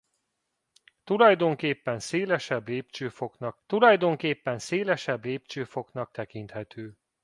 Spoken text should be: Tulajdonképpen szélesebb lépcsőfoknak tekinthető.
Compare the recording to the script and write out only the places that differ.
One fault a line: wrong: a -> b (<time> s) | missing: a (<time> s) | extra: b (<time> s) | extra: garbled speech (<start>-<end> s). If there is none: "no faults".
extra: tulajdonképpen szélesebb lépcsőfoknak (3.7 s)